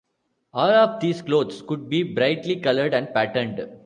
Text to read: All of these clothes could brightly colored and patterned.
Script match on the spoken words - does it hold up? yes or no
no